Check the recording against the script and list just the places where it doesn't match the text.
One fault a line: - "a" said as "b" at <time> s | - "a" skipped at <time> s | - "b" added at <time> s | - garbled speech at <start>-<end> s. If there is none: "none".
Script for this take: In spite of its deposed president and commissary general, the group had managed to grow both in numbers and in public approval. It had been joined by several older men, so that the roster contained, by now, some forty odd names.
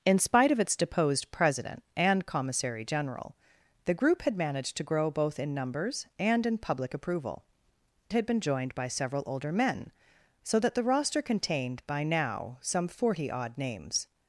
- "It" skipped at 7.5 s